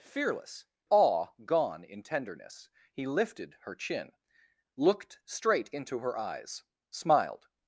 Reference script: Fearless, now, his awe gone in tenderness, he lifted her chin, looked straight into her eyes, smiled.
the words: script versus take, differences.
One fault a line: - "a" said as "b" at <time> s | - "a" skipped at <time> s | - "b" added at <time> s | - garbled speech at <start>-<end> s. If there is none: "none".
- "now his" skipped at 0.7 s